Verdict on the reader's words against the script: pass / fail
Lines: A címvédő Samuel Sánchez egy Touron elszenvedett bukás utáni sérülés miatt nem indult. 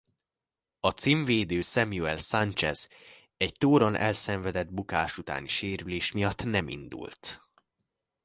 pass